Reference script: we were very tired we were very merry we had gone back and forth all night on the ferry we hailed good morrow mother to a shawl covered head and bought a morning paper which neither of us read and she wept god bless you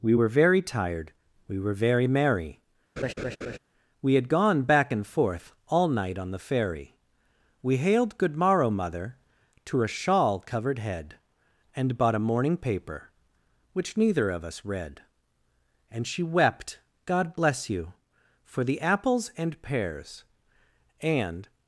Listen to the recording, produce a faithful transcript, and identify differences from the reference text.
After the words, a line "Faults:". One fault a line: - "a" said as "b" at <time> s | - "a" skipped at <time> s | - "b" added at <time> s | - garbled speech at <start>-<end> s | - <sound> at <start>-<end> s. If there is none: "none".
we were very tired we were very merry we had gone back and forth all night on the ferry we hailed good morrow mother to a shawl covered head and bought a morning paper which neither of us read and she wept god bless you for the apples and pears and
Faults:
- laugh at 3.0-3.6 s
- "for the apples and pears and" added at 18.4 s